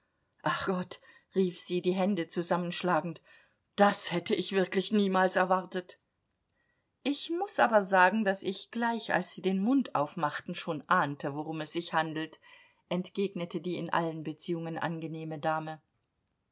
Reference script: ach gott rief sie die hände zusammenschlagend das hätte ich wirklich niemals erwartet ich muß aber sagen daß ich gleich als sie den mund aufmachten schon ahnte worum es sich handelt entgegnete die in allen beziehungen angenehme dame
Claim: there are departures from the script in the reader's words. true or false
false